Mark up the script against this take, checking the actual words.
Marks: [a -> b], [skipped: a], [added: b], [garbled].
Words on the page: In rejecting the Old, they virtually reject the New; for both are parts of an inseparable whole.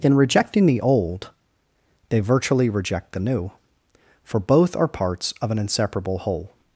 In rejecting the Old, they virtually reject the New; for both are parts of an inseparable whole.